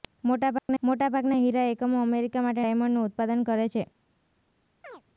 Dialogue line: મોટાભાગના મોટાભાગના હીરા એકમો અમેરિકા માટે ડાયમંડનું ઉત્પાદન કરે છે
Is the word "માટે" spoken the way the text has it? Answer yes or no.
yes